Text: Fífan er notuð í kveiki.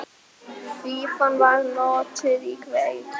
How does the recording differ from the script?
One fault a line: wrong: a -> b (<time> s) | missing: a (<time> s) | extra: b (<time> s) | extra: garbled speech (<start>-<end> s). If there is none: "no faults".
wrong: er -> var (1.4 s)